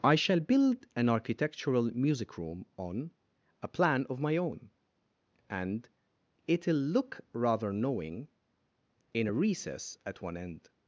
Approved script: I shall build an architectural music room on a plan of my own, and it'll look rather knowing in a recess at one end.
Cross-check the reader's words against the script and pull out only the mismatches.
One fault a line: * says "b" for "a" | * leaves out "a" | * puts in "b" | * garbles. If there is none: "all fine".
all fine